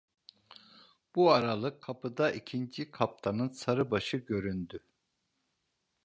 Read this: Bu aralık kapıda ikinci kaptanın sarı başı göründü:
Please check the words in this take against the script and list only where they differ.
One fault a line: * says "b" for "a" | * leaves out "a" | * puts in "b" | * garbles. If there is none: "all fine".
all fine